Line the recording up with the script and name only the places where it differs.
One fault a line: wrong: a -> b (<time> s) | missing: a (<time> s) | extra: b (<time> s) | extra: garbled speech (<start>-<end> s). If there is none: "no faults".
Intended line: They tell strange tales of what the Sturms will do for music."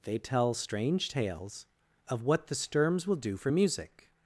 no faults